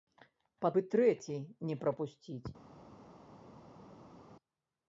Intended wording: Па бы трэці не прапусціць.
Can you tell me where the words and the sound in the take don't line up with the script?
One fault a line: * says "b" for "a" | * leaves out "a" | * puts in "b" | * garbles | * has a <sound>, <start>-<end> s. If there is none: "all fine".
all fine